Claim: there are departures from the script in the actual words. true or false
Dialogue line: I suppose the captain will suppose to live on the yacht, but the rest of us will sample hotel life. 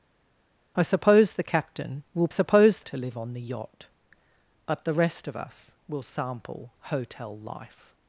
false